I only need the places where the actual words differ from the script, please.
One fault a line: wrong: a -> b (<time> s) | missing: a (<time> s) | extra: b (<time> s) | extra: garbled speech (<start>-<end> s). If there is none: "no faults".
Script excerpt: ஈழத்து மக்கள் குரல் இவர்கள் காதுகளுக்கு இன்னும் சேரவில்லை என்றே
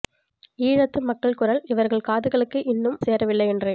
no faults